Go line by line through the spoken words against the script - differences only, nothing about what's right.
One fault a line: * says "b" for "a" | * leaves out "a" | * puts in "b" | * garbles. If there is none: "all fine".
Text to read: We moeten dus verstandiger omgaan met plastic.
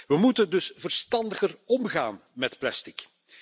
all fine